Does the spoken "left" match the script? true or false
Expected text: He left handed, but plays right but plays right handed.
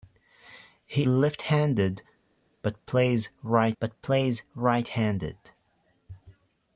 true